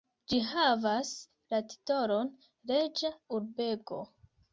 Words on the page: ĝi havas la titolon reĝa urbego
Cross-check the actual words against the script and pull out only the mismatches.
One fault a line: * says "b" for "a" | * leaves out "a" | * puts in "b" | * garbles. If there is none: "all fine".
all fine